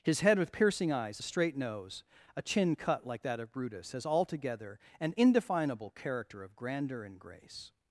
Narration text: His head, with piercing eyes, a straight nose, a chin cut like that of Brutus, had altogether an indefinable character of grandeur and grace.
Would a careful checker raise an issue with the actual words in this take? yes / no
yes